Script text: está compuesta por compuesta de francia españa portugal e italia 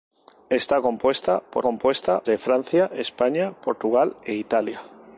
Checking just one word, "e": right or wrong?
right